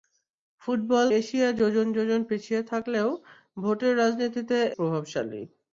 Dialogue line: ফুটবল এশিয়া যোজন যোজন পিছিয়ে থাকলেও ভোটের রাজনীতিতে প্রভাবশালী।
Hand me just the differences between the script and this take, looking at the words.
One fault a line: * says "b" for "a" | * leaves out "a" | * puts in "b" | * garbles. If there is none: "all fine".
all fine